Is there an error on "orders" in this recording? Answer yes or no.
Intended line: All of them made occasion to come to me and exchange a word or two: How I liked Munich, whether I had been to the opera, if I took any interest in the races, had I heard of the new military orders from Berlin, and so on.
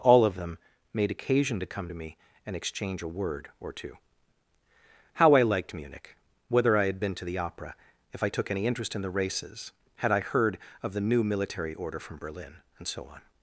yes